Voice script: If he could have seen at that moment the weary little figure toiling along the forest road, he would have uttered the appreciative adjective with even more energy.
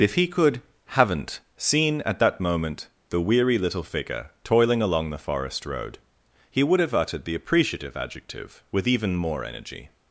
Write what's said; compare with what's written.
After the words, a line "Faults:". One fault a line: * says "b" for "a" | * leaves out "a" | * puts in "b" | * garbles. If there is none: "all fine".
If he could haven't seen at that moment the weary little figure toiling along the forest road, he would have uttered the appreciative adjective with even more energy.
Faults:
* says "haven't" for "have"